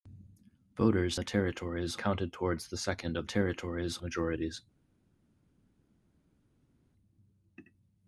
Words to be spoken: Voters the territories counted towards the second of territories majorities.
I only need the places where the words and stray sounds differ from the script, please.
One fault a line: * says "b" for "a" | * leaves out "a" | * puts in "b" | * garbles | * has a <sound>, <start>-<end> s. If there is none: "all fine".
all fine